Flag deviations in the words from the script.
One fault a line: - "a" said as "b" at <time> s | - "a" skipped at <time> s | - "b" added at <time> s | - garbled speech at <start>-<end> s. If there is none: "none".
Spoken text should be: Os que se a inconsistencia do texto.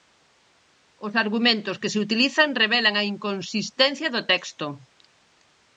- "argumentos" added at 1.2 s
- "utilizan revelan" added at 2.0 s